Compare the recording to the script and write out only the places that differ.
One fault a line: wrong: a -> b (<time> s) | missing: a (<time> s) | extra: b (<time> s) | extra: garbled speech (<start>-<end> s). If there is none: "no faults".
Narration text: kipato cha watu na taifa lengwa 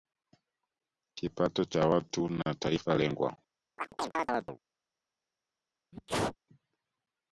no faults